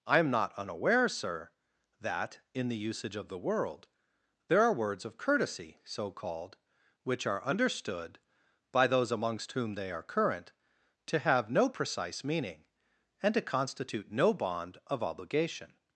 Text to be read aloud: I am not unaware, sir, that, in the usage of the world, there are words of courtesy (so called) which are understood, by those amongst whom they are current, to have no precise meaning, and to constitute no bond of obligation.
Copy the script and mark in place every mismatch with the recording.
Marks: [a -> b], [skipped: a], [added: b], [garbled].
I am not unaware, sir, that, in the usage of the world, there are words of courtesy (so called) which are understood, by those amongst whom they are current, to have no precise meaning, and to constitute no bond of obligation.